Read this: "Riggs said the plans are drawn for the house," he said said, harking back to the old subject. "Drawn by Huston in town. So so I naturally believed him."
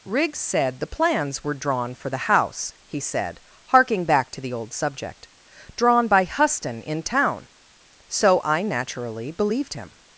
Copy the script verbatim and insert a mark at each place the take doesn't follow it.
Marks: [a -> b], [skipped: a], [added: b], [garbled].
"Riggs said the plans [are -> were] drawn for the house," he said [skipped: said,] harking back to the old subject. "Drawn by Huston in town. So [skipped: so] I naturally believed him."